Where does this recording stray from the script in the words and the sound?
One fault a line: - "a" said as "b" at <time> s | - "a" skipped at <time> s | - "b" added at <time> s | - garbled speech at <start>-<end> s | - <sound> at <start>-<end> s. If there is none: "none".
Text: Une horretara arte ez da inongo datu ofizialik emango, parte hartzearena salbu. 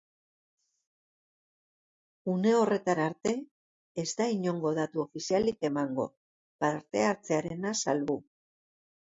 none